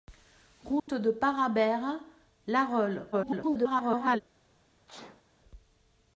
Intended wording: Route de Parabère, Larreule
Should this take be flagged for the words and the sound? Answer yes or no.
yes